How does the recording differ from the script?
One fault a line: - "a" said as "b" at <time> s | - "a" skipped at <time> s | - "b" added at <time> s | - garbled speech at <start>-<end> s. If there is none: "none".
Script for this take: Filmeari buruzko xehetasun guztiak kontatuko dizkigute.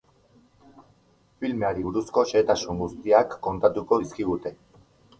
none